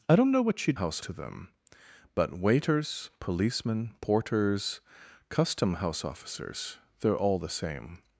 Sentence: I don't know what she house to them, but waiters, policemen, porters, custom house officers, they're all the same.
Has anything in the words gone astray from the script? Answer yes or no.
no